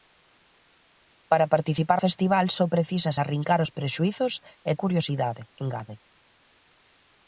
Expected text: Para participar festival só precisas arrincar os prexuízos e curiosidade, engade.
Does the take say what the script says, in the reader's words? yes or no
yes